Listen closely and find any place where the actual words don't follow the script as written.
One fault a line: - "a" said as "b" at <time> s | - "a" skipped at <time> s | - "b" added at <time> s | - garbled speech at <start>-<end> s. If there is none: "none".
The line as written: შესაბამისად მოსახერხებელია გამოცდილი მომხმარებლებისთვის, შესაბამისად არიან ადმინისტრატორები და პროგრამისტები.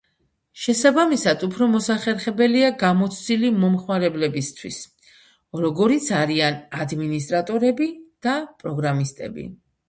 - "უფრო" added at 1.5 s
- "შესაბამისად" said as "როგორიც" at 5.7 s